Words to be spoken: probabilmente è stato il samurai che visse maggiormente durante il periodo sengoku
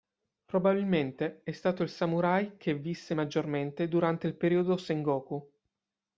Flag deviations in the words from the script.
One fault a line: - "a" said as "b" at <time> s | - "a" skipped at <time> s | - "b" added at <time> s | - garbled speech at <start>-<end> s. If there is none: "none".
none